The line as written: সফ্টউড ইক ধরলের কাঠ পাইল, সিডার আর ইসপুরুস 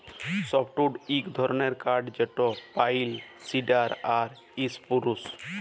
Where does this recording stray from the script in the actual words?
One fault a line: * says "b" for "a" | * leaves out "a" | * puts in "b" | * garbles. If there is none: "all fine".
* puts in "যেট"